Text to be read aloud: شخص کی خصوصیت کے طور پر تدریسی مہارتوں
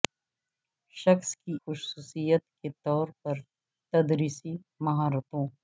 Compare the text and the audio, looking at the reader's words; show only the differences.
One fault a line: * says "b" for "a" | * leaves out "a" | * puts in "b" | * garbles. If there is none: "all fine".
all fine